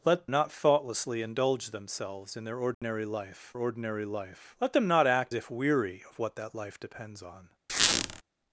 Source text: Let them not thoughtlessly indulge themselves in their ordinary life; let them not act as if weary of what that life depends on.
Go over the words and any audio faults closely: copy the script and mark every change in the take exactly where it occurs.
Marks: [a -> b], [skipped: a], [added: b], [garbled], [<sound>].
Let [skipped: them] not thoughtlessly indulge themselves in their ordinary [dropout] life; [added: ordinary life] let them not act [skipped: as] if weary of what that life depends on. [squeak]